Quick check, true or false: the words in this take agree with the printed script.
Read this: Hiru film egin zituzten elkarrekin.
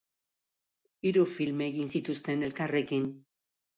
true